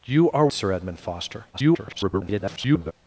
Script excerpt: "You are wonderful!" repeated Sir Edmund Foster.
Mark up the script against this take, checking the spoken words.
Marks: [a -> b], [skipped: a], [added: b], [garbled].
"You are [skipped: wonderful!" repeated] Sir Edmund Foster. [garbled]